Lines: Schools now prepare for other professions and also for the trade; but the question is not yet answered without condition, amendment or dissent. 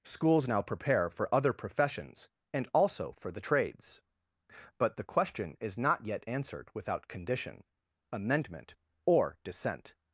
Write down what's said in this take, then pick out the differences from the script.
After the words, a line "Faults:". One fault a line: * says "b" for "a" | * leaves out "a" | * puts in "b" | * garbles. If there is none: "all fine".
Schools now prepare for other professions and also for the trades; but the question is not yet answered without condition, amendment or dissent.
Faults:
* says "trades" for "trade"